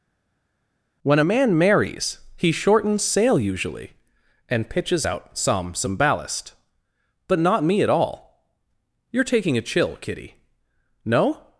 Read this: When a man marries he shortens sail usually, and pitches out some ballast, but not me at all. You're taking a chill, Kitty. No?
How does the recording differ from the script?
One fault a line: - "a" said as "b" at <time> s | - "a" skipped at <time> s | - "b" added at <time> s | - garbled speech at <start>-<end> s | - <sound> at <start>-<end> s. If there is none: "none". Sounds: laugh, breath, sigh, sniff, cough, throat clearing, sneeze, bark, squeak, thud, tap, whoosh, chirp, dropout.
- "some" added at 5.7 s